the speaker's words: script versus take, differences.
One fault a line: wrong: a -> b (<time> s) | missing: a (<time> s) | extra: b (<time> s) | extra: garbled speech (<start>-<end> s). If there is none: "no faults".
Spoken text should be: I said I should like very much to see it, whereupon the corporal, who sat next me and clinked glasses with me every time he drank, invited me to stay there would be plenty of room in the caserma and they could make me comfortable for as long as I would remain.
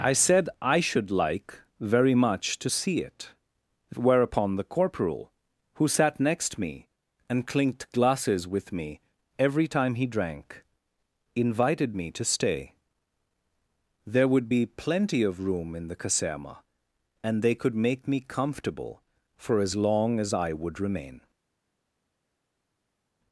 no faults